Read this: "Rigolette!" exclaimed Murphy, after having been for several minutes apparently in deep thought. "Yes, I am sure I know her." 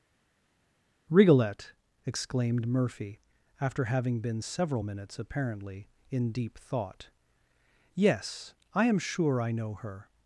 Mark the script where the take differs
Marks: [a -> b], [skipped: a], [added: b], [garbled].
"Rigolette!" exclaimed Murphy, after having been [skipped: for] several minutes apparently in deep thought. "Yes, I am sure I know her."